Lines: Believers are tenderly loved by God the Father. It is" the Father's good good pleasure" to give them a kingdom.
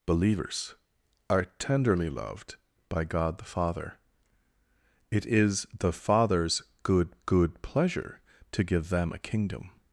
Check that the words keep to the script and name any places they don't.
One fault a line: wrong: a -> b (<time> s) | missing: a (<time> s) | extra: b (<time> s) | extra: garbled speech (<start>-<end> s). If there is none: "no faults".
no faults